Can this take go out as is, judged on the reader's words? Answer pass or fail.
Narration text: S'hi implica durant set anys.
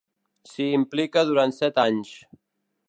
pass